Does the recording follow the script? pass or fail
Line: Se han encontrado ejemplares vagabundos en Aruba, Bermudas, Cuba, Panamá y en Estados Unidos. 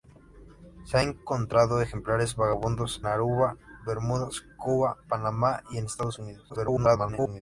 fail